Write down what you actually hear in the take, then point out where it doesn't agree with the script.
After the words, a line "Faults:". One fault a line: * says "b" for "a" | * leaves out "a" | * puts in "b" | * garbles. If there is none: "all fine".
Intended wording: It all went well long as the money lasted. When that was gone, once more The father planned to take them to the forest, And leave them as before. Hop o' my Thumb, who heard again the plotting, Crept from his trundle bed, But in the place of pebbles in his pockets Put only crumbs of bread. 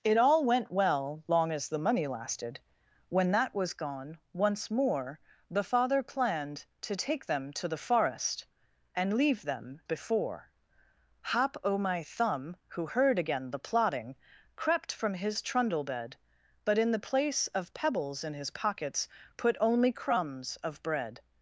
It all went well long as the money lasted. When that was gone, once more The father planned to take them to the forest, And leave them before. Hop o' my Thumb, who heard again the plotting, Crept from his trundle bed, But in the place of pebbles in his pockets Put only crumbs of bread.
Faults:
* leaves out "as"